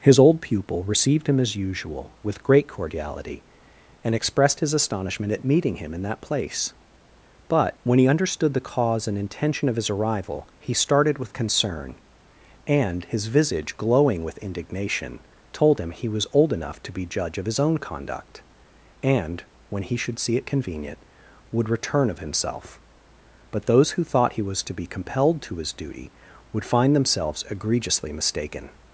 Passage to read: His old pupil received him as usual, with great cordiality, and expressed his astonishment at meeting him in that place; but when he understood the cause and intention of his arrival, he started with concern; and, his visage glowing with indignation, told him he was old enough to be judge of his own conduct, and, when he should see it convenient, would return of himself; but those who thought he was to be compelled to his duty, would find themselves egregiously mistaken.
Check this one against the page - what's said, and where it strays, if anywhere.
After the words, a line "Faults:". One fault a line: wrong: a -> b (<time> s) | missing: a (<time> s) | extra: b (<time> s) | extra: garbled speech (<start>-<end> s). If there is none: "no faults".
His old pupil received him as usual, with great cordiality, and expressed his astonishment at meeting him in that place; but when he understood the cause and intention of his arrival, he started with concern; and, his visage glowing with indignation, told him he was old enough to be judge of his own conduct, and, when he should see it convenient, would return of himself; but those who thought he was to be compelled to his duty, would find themselves egregiously mistaken.
Faults:
no faults